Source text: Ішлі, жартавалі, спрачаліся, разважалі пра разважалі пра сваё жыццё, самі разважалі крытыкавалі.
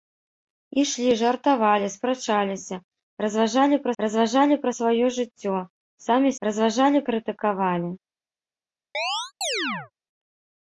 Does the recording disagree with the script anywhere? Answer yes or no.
no